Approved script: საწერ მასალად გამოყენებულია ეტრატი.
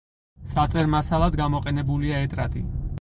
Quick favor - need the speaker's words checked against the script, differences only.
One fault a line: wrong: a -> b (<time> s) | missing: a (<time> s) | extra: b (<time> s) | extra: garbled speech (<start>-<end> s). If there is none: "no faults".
no faults